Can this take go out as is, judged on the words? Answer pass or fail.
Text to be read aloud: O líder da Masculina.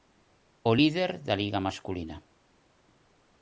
fail